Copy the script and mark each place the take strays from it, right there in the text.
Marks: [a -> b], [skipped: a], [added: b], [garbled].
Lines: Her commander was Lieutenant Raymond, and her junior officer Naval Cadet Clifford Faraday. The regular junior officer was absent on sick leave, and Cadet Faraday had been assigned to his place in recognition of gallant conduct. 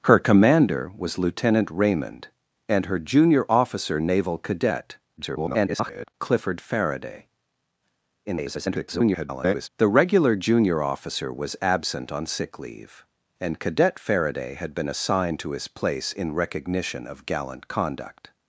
Her commander was Lieutenant Raymond, and her junior officer Naval Cadet [garbled] Clifford Faraday. [garbled] The regular junior officer was absent on sick leave, and Cadet Faraday had been assigned to his place in recognition of gallant conduct.